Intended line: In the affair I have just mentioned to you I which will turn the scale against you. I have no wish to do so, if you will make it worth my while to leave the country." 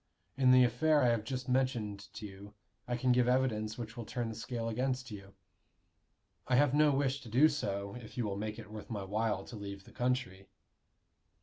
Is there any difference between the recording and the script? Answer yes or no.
yes